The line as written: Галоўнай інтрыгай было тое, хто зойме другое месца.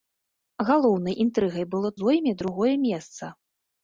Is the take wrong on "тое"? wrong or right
wrong